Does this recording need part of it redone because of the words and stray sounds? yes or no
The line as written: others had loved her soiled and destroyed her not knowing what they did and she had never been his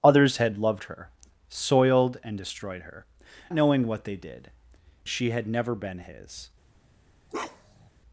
yes